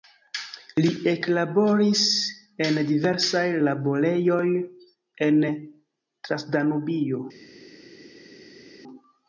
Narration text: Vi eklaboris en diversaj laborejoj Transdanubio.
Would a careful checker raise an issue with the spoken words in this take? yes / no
yes